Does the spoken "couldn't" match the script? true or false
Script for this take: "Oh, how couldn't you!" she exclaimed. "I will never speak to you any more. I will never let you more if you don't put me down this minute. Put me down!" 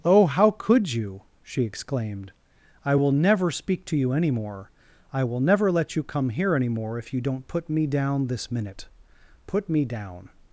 false